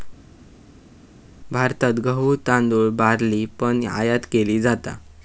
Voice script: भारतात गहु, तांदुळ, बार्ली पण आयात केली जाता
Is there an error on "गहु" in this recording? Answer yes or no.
no